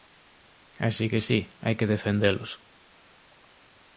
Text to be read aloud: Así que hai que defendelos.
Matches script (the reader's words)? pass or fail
fail